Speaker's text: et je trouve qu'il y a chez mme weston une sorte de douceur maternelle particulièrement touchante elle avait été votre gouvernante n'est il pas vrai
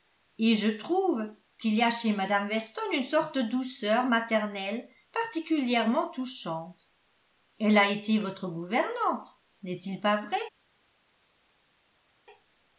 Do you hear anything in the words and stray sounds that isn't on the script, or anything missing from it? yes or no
yes